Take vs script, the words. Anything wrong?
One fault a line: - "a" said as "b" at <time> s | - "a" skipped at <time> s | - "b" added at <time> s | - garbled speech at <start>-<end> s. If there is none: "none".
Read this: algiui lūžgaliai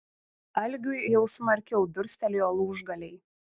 - "jau smarkiau durstelėjo" added at 1.1 s